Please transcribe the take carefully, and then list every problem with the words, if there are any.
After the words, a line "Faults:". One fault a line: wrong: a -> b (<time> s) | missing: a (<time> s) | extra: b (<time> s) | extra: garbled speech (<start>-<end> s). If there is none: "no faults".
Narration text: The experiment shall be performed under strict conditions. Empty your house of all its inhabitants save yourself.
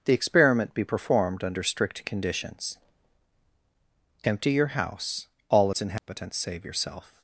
The experiment be performed under strict conditions. Empty your house all its inhabitants save yourself.
Faults:
missing: shall (0.7 s)
missing: of (5.3 s)